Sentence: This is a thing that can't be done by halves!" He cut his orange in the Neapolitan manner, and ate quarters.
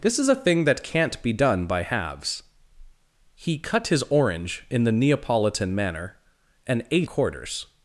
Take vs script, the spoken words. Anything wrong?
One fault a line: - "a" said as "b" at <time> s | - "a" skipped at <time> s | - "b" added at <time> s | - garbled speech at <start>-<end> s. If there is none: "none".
none